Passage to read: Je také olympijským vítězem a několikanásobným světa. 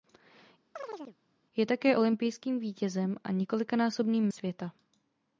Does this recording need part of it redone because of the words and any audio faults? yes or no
yes